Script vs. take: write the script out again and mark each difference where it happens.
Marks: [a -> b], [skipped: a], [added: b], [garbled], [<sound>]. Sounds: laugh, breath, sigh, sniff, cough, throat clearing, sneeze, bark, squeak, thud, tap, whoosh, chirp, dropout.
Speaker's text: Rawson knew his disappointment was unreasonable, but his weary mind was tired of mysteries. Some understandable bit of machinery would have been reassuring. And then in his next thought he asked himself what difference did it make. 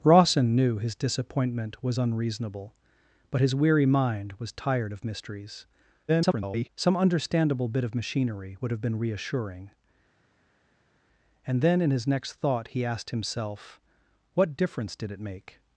Rawson knew his disappointment was unreasonable, but his weary mind was tired of mysteries. [garbled] Some understandable bit of machinery would have been reassuring. And then in his next thought he asked himself what difference did it make.